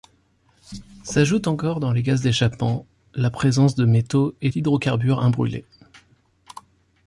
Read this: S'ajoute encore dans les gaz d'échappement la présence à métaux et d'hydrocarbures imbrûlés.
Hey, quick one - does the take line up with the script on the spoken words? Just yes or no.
no